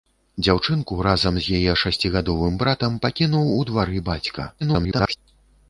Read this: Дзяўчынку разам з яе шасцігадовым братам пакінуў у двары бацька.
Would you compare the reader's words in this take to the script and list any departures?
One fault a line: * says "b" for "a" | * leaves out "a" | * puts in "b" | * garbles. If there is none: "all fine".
* garbles